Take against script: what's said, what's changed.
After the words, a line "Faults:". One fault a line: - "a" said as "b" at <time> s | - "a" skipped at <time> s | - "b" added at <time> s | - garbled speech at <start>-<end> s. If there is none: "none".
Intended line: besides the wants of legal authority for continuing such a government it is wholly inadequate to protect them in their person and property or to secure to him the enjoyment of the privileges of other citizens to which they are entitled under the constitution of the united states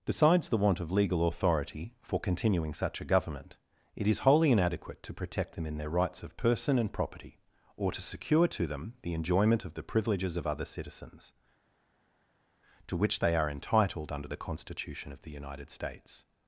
besides the want of legal authority for continuing such a government it is wholly inadequate to protect them in their rights of person and property or to secure to them the enjoyment of the privileges of other citizens to which they are entitled under the constitution of the united states
Faults:
- "wants" said as "want" at 0.6 s
- "rights of" added at 5.9 s
- "him" said as "them" at 8.7 s